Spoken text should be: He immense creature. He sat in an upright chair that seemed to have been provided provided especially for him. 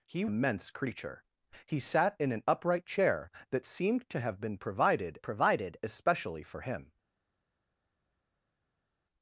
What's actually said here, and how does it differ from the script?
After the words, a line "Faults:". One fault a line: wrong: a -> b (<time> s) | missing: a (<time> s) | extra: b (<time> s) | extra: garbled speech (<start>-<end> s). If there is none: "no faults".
He immense creature. He sat in an upright chair that seemed to have been provided provided especially for him.
Faults:
no faults